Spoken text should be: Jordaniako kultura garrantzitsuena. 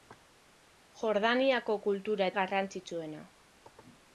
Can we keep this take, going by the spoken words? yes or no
yes